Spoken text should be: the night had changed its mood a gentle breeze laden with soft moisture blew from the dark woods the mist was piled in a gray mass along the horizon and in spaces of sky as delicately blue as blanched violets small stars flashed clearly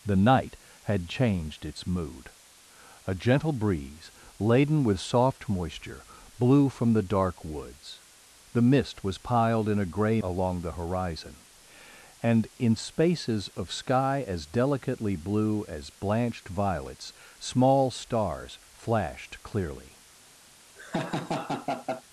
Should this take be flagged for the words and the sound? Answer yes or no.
yes